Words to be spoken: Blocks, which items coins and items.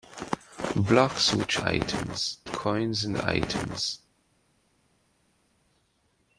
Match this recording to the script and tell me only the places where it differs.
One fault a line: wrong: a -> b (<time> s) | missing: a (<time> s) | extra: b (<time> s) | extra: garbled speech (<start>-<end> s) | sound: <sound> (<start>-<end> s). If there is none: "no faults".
no faults